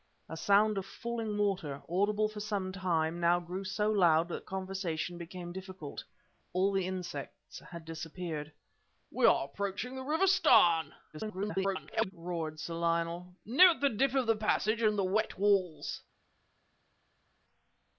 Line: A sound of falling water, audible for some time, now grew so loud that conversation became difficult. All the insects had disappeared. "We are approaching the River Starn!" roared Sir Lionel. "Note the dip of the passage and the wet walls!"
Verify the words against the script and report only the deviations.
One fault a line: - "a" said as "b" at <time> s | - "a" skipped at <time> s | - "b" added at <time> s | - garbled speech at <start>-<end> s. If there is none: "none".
- garbled speech at 11.1-12.1 s